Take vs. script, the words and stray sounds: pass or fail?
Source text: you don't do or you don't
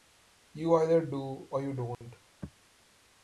fail